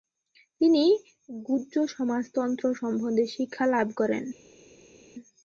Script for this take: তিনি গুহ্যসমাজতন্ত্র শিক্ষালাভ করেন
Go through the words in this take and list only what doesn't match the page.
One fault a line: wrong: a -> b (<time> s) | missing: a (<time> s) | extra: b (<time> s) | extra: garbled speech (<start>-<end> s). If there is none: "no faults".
extra: সম্বন্ধে (2.8 s)